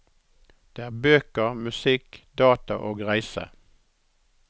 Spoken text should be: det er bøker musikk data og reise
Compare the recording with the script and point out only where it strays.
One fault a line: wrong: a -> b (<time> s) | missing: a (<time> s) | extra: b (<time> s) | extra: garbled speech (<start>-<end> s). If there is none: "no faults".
no faults